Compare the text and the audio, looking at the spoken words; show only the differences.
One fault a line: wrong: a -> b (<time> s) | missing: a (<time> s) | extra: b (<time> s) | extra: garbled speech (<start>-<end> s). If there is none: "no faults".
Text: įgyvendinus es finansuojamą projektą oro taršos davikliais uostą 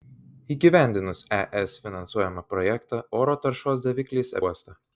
no faults